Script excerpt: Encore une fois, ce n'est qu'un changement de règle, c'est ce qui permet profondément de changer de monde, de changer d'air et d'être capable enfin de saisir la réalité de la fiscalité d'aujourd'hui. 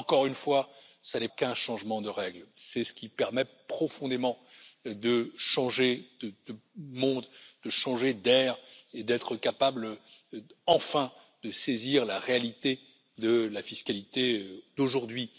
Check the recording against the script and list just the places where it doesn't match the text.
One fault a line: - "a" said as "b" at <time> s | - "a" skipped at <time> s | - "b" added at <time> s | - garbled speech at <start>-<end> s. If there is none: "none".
none